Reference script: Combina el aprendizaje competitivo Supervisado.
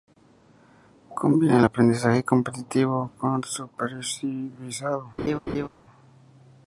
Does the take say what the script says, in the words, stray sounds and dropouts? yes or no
no